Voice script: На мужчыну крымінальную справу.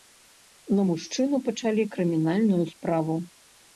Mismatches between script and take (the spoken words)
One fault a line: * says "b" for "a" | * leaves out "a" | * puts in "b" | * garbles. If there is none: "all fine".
* puts in "пачалі"